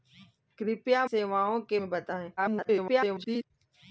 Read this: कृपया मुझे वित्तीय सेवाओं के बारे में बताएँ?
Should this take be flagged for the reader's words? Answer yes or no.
yes